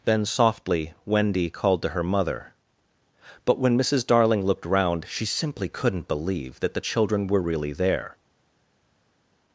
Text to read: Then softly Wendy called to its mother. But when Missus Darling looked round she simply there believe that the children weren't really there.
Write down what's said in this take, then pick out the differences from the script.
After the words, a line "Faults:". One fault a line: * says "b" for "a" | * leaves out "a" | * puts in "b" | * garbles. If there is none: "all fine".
Then softly Wendy called to her mother. But when Missus Darling looked round she simply couldn't believe that the children were really there.
Faults:
* says "her" for "its"
* says "couldn't" for "there"
* says "were" for "weren't"